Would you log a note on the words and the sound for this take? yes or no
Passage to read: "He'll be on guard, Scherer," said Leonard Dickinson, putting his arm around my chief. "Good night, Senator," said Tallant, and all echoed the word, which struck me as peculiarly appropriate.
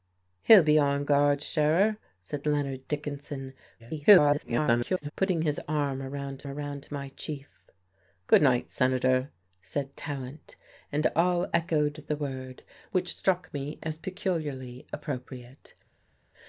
yes